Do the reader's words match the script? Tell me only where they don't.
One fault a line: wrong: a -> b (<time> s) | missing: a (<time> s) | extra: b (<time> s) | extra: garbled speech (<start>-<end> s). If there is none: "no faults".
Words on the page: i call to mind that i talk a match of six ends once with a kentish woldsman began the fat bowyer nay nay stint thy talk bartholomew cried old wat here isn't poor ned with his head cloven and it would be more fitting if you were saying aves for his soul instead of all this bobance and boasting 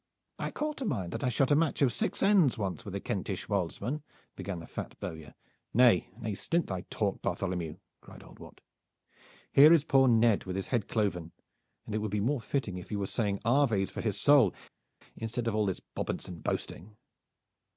wrong: talk -> shot (1.3 s)
wrong: isn't -> is (9.7 s)